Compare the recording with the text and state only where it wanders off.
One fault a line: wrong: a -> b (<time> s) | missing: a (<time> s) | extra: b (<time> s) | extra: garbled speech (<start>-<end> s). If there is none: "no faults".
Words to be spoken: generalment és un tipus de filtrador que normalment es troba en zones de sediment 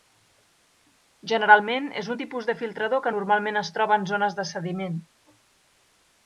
no faults